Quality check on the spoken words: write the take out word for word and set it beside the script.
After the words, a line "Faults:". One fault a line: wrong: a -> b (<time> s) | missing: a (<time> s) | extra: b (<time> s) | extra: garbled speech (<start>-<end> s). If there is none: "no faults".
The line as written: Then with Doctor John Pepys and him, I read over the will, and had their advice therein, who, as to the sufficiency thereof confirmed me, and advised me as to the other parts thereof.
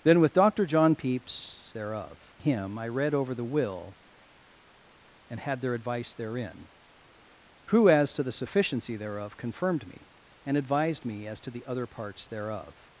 Then with Doctor John Pepys thereof him, I read over the will, and had their advice therein, who, as to the sufficiency thereof confirmed me, and advised me as to the other parts thereof.
Faults:
wrong: and -> thereof (1.7 s)